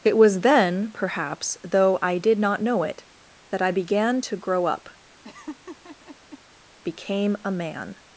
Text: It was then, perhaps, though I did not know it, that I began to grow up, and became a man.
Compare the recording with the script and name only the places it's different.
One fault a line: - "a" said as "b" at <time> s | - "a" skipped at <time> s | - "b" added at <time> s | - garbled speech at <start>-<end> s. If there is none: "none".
- "and" skipped at 4.9 s